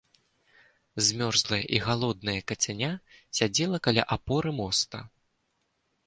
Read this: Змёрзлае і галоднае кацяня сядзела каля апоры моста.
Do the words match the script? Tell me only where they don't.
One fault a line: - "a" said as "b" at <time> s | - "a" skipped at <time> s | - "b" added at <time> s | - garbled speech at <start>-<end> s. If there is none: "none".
none